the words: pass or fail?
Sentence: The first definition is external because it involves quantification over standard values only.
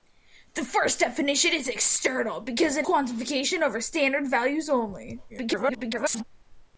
fail